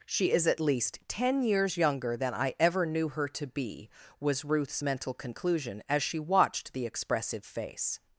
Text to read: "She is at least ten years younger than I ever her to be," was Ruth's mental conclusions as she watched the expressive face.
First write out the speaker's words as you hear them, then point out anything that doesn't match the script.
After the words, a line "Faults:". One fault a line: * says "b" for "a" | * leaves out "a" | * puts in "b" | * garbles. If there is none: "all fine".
"She is at least ten years younger than I ever knew her to be," was Ruth's mental conclusion as she watched the expressive face.
Faults:
* puts in "knew"
* says "conclusion" for "conclusions"